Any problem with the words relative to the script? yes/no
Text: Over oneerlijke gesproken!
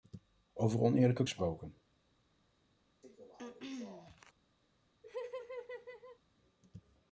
no